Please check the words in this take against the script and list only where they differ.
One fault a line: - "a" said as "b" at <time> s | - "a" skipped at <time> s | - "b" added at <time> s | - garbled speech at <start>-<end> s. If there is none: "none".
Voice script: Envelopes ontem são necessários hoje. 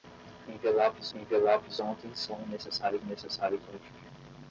- "envelopes" added at 1.1 s
- "necessários" added at 3.0 s